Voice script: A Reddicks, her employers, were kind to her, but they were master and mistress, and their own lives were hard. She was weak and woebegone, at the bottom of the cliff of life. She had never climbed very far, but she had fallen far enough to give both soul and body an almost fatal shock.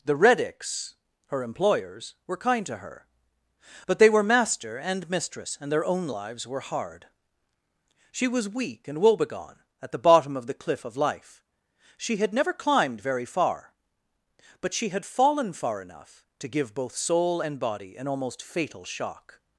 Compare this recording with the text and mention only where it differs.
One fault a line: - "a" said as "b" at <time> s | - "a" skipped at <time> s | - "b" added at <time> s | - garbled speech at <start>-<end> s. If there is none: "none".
- "A" said as "The" at 0.0 s